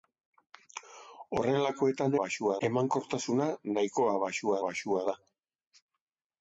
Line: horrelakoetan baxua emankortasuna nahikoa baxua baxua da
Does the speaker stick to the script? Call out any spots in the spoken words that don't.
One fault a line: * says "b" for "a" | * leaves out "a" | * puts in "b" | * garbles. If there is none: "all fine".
all fine